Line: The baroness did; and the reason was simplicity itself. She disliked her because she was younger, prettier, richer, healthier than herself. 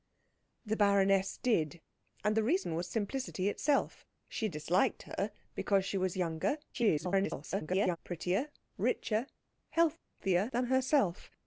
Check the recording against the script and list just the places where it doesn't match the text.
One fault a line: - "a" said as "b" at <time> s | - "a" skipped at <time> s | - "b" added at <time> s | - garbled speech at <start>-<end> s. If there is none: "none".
- garbled speech at 6.7-8.0 s